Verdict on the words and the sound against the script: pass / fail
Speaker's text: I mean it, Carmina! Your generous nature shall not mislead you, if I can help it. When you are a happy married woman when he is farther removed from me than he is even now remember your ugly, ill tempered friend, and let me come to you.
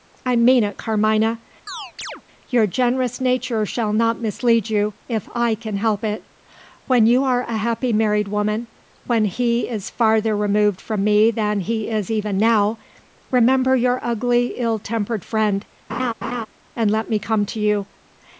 fail